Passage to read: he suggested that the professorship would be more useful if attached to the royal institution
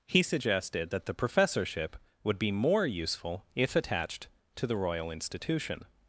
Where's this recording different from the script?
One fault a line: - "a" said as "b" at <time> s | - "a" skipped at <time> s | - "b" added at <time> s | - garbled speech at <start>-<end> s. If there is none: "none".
none